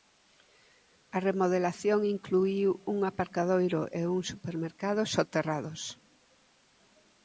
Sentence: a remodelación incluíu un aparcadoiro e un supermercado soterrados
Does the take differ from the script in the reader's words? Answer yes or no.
no